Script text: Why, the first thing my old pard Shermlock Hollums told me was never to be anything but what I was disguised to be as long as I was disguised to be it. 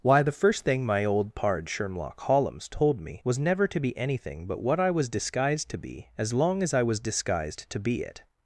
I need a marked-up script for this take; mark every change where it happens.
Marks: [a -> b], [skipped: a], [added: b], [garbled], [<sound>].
Why, the first thing my old pard Shermlock Hollums told me was never to be anything but what I was disguised to be as long as I was disguised to be it.